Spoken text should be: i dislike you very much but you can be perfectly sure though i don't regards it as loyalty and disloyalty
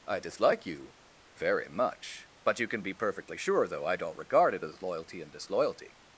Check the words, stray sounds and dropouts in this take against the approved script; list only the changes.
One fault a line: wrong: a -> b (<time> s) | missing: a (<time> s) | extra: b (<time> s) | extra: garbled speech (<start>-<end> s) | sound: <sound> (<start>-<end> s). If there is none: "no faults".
wrong: regards -> regard (4.2 s)